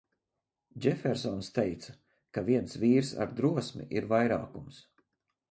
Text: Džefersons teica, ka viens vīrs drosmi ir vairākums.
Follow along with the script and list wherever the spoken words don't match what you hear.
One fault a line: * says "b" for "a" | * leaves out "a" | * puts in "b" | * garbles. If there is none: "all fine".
* puts in "ar"